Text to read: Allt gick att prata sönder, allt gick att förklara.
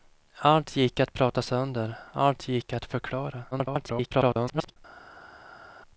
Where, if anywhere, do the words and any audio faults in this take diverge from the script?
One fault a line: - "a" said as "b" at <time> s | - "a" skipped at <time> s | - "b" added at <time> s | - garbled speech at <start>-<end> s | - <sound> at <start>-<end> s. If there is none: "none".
- garbled speech at 3.5-4.8 s